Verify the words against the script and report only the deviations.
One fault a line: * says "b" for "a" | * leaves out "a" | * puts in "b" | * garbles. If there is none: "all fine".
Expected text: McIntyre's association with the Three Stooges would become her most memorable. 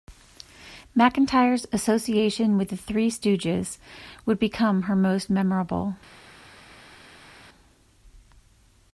all fine